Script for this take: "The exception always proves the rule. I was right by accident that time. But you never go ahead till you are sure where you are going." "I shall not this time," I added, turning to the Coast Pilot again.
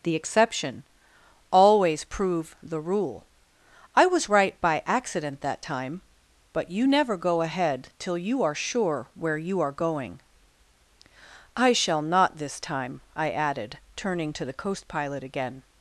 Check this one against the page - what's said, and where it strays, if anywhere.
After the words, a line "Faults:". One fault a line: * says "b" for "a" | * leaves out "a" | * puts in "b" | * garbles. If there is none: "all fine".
"The exception always prove the rule. I was right by accident that time. But you never go ahead till you are sure where you are going." "I shall not this time," I added, turning to the Coast Pilot again.
Faults:
* says "prove" for "proves"